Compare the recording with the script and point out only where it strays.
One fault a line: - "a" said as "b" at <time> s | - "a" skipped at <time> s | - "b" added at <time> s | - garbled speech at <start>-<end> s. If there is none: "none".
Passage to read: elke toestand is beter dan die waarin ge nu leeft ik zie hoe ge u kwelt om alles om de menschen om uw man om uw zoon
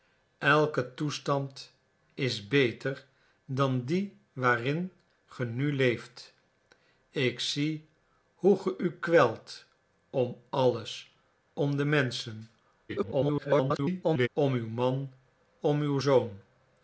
- garbled speech at 12.9-14.3 s